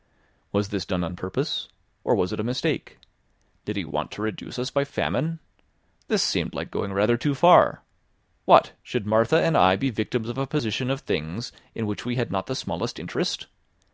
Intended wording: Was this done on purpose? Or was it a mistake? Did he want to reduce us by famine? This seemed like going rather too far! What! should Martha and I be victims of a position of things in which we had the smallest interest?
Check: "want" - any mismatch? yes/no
no